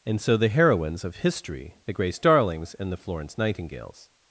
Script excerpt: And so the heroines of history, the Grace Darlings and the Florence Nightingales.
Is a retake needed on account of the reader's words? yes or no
no